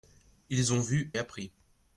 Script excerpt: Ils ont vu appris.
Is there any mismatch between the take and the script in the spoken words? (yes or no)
no